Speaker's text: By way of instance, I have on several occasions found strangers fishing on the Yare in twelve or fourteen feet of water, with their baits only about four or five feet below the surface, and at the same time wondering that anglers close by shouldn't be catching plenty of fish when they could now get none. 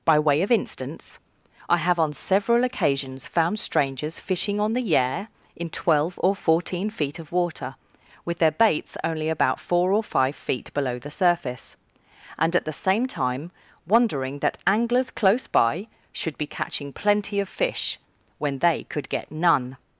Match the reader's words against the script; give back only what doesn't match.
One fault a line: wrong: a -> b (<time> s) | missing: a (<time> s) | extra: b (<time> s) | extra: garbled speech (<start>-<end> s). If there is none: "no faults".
wrong: shouldn't -> should (16.1 s)
missing: now (19.1 s)